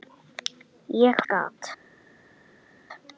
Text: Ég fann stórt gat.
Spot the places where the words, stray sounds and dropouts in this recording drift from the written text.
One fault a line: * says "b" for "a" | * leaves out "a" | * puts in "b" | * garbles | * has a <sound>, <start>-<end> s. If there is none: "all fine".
* leaves out "fann stórt"